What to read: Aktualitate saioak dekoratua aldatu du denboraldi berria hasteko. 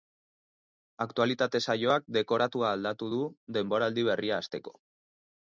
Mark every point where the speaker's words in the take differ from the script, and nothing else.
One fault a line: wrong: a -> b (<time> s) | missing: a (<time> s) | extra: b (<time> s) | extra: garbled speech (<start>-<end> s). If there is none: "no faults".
no faults